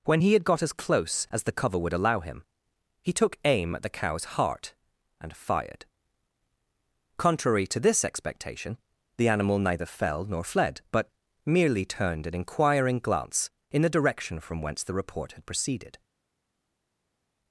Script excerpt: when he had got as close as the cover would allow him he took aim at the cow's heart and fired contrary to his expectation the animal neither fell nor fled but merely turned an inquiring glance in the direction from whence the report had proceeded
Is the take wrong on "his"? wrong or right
wrong